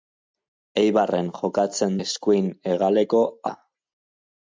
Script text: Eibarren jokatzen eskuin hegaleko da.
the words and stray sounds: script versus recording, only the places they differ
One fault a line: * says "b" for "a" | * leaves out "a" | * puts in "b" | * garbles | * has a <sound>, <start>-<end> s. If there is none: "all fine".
all fine